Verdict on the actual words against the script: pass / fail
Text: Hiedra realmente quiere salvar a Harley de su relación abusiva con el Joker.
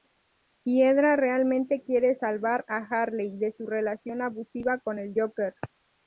pass